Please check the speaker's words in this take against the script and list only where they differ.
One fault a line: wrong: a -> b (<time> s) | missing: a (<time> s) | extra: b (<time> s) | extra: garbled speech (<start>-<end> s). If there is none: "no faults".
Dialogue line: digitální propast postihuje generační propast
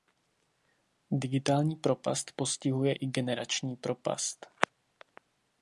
extra: i (2.9 s)